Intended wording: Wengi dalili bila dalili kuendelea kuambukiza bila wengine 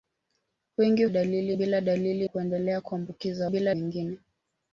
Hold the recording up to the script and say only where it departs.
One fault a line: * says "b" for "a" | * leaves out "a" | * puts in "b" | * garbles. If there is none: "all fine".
all fine